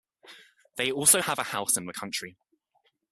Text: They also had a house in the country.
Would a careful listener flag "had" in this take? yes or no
yes